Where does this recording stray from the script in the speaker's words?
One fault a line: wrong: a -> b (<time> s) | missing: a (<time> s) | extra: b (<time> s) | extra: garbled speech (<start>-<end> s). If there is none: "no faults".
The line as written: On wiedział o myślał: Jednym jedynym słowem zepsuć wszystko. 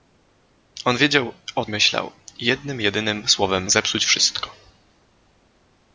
no faults